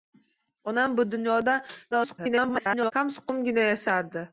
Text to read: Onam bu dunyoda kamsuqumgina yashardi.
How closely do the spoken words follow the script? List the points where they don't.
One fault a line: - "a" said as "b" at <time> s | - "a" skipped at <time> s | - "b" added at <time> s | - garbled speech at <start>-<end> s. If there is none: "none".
- garbled speech at 1.9-2.9 s